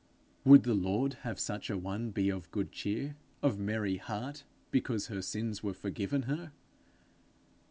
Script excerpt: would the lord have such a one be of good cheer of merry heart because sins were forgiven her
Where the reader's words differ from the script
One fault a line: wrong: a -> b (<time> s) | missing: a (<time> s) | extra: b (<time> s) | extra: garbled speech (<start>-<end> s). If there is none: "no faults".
extra: her (5.1 s)